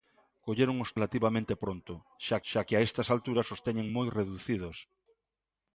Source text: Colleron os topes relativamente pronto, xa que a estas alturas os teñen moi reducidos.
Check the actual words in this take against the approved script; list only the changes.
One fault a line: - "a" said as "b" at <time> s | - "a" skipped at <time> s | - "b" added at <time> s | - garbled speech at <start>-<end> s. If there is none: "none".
- "topes" skipped at 0.9 s
- "xa" added at 2.5 s